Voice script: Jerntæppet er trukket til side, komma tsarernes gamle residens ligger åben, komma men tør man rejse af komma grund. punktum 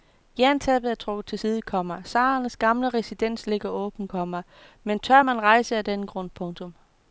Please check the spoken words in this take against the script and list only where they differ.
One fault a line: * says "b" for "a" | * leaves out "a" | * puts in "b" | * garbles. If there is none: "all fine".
* says "den" for "komma"